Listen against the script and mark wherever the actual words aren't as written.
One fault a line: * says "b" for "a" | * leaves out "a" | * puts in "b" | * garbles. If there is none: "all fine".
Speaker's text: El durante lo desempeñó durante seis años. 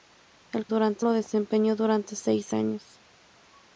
all fine